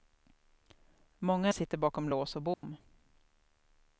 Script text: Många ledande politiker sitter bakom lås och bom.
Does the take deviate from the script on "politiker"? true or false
true